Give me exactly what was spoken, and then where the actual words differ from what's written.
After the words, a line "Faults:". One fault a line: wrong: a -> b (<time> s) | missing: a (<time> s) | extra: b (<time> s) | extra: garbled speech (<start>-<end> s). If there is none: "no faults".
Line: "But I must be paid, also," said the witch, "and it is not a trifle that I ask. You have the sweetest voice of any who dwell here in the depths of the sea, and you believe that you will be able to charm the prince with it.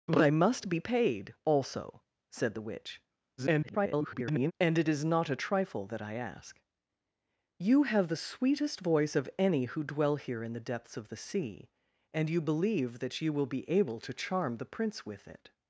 "But I must be paid, also," said the witch, [garbled] "and it is not a trifle that I ask. You have the sweetest voice of any who dwell here in the depths of the sea, and you believe that you will be able to charm the prince with it.
Faults:
extra: garbled speech (3.4-4.5 s)